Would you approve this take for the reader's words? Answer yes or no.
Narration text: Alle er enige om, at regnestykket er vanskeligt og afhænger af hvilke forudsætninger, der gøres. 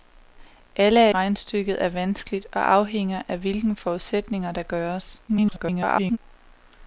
no